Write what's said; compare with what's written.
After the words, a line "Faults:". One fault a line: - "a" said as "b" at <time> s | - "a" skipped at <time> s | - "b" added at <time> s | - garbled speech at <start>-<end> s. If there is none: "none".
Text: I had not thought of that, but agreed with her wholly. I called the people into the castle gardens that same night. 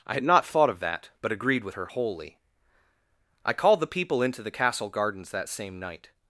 I had not thought of that, but agreed with her wholly. I called the people into the castle gardens that same night.
Faults:
none